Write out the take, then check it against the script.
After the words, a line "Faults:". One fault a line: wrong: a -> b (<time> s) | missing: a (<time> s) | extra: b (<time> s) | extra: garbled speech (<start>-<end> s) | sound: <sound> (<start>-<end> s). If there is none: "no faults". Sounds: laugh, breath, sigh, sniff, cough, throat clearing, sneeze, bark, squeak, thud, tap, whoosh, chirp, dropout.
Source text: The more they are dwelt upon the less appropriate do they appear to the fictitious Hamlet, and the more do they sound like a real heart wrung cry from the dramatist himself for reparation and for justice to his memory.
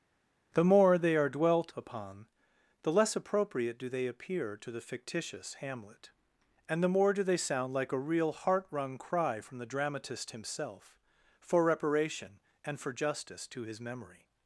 The more they are dwelt upon the less appropriate do they appear to the fictitious Hamlet, and the more do they sound like a real heart wrung cry from the dramatist himself for reparation and for justice to his memory.
Faults:
no faults